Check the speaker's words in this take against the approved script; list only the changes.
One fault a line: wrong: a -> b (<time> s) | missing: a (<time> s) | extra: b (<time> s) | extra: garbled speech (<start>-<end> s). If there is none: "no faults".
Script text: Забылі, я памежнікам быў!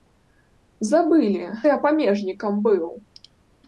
no faults